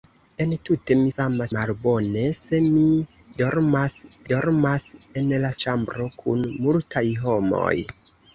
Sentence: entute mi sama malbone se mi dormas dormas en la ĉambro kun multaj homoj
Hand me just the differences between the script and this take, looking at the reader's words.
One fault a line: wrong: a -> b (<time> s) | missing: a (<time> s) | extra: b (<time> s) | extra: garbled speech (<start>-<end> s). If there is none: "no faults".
no faults